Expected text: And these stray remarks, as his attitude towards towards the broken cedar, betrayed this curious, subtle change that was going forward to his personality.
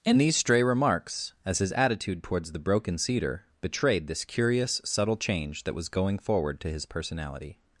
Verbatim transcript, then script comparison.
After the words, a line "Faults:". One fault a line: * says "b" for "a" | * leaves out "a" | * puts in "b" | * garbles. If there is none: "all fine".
And these stray remarks, as his attitude towards the broken cedar, betrayed this curious, subtle change that was going forward to his personality.
Faults:
* leaves out "towards"